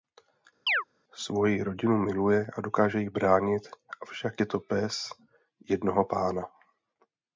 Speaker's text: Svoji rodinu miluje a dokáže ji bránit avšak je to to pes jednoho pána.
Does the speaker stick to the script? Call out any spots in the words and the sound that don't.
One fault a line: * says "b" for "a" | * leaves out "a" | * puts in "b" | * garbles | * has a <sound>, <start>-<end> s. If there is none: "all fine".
* has a chirp, 0.7-0.8 s
* leaves out "to"